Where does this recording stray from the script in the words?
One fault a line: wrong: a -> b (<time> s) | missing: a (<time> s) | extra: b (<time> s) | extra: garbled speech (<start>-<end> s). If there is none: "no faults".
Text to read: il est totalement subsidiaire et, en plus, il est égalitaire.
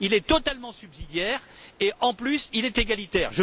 no faults